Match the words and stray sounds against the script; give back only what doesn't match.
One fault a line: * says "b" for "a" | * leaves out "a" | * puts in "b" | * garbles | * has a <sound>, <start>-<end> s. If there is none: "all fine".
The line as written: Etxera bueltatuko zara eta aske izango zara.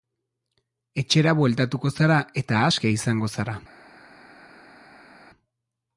all fine